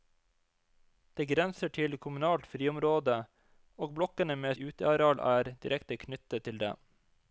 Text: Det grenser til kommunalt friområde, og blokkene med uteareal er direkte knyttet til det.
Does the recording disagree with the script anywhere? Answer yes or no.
no